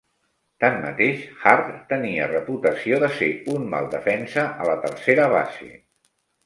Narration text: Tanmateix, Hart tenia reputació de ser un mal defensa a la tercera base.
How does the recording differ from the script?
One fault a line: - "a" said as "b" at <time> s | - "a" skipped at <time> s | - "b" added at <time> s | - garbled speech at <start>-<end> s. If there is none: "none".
none